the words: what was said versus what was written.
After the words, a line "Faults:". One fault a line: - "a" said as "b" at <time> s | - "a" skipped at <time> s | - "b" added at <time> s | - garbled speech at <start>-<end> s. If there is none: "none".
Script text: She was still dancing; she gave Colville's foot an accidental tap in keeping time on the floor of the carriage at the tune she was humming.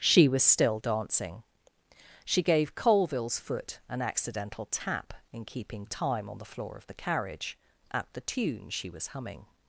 She was still dancing; she gave Colville's foot an accidental tap in keeping time on the floor of the carriage at the tune she was humming.
Faults:
none